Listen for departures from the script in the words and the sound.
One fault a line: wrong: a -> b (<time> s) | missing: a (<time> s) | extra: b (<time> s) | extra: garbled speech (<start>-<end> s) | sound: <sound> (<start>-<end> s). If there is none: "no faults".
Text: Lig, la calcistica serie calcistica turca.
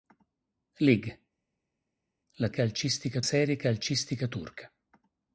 no faults